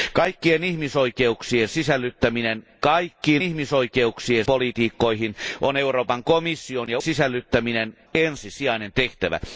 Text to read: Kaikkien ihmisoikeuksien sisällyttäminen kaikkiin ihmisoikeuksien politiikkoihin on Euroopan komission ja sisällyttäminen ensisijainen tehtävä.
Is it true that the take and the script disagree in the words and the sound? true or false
false